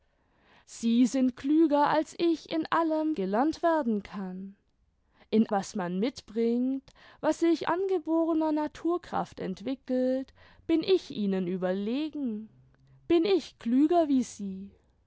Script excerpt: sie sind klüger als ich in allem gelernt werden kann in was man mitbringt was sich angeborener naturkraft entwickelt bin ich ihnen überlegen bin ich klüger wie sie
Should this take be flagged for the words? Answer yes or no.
no